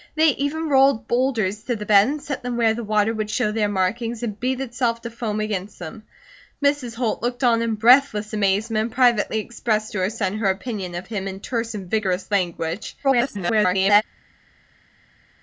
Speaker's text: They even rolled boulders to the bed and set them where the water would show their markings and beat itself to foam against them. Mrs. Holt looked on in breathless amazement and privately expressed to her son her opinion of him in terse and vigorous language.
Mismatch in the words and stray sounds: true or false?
true